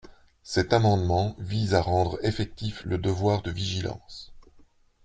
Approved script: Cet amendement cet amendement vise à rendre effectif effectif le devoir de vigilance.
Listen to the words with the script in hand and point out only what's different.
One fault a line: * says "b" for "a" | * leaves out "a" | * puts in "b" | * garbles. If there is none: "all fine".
* leaves out "cet amendement"
* leaves out "effectif"